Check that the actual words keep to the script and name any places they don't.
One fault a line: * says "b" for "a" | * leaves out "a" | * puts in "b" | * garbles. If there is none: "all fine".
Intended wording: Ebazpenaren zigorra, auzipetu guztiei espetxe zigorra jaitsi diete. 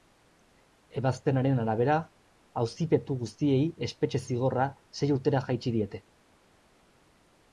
* says "arabera" for "zigorra"
* puts in "sei urtera"